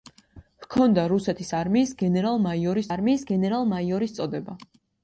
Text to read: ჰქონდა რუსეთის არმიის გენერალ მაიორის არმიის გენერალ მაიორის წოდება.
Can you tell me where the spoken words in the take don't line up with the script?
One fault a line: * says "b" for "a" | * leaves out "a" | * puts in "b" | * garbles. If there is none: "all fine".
all fine